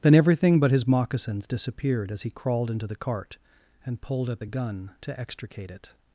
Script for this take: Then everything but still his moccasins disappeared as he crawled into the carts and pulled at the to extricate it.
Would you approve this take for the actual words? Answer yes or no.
no